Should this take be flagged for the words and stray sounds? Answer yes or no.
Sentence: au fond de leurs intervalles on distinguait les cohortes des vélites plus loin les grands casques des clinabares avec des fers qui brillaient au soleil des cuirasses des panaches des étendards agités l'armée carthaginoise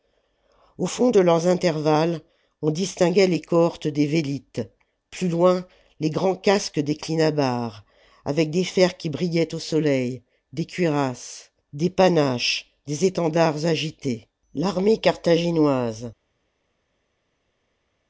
no